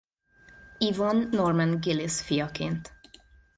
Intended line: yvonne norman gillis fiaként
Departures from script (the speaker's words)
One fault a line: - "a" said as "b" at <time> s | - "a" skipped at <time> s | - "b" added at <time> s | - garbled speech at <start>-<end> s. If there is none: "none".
none